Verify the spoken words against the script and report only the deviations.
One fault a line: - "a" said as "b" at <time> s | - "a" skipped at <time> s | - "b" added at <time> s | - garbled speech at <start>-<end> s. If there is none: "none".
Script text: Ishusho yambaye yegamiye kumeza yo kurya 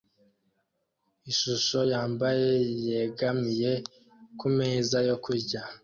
none